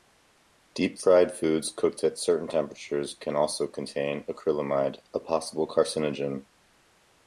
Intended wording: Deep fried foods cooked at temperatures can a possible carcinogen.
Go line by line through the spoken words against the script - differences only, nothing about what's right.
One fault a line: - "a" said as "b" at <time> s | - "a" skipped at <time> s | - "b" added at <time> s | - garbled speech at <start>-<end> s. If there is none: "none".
- "certain" added at 2.2 s
- "also contain acrylamide" added at 3.3 s